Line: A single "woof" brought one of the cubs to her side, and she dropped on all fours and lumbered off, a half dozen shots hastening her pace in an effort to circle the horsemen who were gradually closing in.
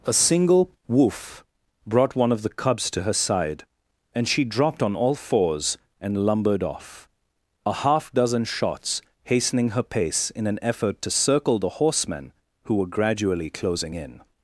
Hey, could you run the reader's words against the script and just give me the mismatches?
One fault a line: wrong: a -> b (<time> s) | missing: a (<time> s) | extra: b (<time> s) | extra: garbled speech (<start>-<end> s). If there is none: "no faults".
no faults